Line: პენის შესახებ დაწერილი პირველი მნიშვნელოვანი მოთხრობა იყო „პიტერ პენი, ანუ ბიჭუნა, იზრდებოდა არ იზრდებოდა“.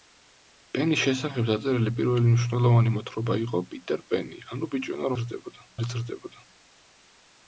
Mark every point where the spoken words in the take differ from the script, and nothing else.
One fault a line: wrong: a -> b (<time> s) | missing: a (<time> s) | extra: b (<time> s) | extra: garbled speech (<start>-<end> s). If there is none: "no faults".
no faults